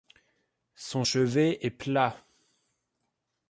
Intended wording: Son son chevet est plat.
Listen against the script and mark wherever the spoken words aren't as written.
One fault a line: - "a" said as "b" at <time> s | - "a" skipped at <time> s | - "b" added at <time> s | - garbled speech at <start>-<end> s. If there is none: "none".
- "son" skipped at 1.0 s